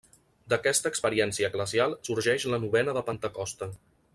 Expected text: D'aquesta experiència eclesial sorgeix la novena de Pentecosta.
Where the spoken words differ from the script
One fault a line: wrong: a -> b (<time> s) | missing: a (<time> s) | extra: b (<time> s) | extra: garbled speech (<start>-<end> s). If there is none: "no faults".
no faults